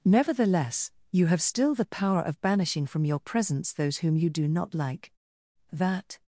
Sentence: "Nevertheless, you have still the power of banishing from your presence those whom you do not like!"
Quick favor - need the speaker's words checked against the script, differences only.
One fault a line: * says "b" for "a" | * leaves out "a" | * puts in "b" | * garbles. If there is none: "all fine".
* puts in "That"